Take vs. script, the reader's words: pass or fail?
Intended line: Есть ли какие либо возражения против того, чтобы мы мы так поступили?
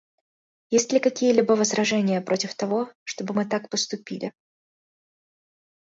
fail